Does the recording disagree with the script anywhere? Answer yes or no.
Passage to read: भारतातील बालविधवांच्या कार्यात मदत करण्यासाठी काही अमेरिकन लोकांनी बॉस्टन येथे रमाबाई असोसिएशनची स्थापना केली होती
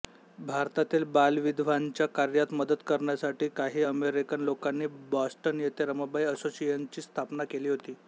no